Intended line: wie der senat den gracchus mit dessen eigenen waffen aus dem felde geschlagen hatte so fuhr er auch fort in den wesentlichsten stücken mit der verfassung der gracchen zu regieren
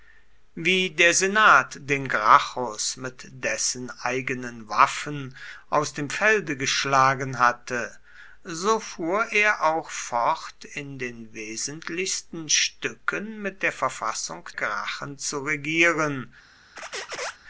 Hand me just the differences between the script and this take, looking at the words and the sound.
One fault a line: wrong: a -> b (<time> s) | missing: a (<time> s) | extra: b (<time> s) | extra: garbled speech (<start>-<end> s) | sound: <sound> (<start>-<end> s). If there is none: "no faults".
missing: der (14.5 s)
sound: squeak (16.8-17.4 s)